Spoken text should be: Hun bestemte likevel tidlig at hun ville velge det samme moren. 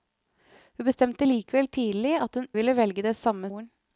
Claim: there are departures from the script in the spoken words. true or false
false